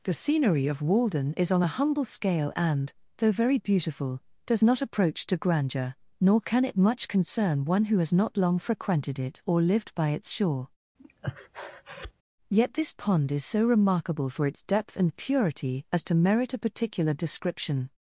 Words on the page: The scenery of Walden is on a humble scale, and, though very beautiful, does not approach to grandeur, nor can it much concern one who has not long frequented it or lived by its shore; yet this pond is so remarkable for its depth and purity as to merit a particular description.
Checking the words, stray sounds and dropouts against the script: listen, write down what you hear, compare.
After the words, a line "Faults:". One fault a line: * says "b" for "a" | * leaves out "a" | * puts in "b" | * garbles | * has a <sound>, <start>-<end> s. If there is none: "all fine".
The scenery of Walden is on a humble scale, and, though very beautiful, does not approach to grandeur, nor can it much concern one who has not long frequented it or lived by its shore; yet this pond is so remarkable for its depth and purity as to merit a particular description.
Faults:
* has a breath, 11.0-12.1 s